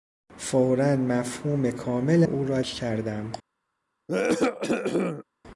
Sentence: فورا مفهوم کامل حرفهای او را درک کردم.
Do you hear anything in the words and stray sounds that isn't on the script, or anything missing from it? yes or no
yes